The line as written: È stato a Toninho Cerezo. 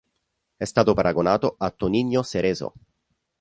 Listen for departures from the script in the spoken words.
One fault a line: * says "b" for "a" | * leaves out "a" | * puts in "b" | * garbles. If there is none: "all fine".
* puts in "paragonato"